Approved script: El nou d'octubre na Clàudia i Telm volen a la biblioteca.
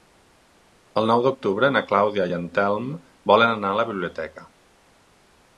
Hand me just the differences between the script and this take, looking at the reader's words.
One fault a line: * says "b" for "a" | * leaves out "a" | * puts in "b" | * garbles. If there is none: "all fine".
* puts in "en"
* puts in "anar"